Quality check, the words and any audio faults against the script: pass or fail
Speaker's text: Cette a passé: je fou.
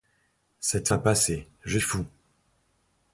pass